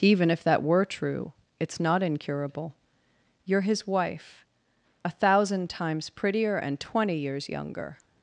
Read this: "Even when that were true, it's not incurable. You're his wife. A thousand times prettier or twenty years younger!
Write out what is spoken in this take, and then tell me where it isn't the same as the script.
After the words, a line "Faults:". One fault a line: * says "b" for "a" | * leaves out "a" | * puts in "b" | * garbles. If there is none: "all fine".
"Even if that were true, it's not incurable. You're his wife. A thousand times prettier and twenty years younger!
Faults:
* says "if" for "when"
* says "and" for "or"